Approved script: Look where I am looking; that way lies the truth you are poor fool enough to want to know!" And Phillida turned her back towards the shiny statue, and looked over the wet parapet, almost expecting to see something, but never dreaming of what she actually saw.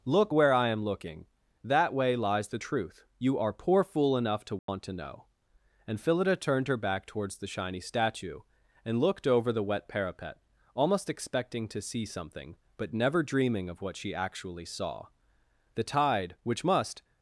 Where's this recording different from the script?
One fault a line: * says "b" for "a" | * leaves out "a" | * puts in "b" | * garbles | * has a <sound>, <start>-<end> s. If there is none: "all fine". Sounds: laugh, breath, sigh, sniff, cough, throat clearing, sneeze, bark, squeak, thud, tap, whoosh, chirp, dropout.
* has a dropout, 4.6-4.7 s
* puts in "The tide which must"